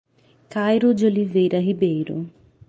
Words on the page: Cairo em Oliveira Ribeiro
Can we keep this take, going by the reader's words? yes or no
no